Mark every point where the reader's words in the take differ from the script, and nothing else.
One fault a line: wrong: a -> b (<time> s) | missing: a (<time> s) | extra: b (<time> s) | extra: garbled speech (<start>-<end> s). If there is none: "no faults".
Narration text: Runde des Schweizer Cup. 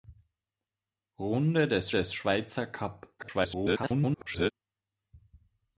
extra: des (1.9 s)
extra: garbled speech (3.2-4.5 s)